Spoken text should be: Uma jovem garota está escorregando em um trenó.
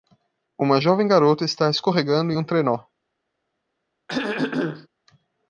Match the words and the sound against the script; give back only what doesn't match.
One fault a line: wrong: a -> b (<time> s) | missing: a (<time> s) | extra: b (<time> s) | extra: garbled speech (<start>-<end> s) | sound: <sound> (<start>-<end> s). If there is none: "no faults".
sound: throat clearing (4.1-4.9 s)